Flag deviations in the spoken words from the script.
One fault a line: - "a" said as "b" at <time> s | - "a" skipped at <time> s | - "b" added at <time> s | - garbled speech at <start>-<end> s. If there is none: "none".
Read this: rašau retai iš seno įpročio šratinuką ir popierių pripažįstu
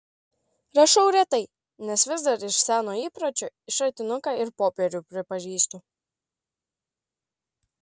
- "nes vis dar" added at 1.9 s